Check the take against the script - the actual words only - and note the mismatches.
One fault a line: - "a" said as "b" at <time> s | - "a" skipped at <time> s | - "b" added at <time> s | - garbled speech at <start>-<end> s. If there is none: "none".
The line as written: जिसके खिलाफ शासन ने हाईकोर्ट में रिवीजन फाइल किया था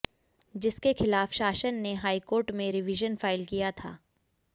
none